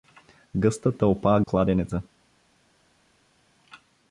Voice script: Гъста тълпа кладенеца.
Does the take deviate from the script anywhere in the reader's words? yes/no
no